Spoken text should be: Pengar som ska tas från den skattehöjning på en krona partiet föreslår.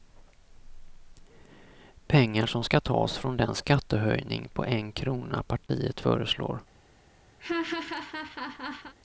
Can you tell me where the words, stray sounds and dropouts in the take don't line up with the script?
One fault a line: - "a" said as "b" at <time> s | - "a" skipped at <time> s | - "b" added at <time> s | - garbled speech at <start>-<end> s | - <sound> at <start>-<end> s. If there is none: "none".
- dropout at 5.7-5.7 s
- laugh at 7.4-8.9 s